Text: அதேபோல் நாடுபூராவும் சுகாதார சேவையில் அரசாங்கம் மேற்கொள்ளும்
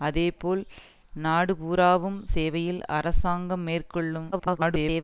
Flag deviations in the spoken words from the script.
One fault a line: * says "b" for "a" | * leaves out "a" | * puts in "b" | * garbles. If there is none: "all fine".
* leaves out "சுகாதார"
* garbles